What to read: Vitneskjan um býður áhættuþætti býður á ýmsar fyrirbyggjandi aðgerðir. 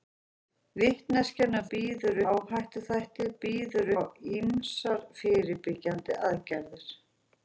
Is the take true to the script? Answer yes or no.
yes